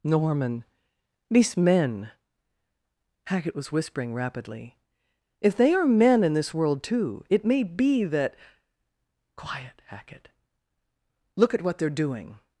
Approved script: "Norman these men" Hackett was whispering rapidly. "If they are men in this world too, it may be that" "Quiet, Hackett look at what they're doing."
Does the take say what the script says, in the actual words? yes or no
yes